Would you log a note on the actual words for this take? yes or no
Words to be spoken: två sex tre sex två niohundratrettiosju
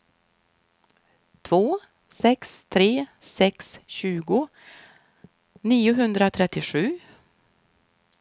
yes